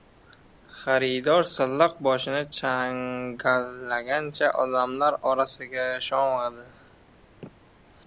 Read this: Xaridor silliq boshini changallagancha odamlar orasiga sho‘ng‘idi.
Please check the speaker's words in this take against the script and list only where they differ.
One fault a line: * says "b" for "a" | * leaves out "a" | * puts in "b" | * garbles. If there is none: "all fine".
all fine